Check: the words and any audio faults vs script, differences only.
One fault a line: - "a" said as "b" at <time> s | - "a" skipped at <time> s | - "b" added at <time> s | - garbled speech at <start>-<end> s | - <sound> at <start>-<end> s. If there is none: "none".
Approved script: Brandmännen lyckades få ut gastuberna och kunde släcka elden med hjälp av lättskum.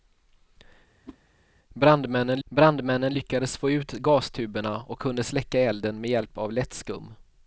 - whoosh at 1.1-1.2 s
- "brandmännen" added at 2.4 s